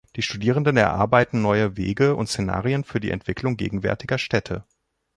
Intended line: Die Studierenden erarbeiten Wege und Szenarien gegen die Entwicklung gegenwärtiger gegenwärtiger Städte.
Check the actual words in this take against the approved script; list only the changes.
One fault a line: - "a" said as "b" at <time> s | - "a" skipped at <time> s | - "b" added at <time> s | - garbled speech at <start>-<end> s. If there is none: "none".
- "neue" added at 1.4 s
- "gegen" said as "für" at 2.8 s
- "gegenwärtiger" skipped at 4.2 s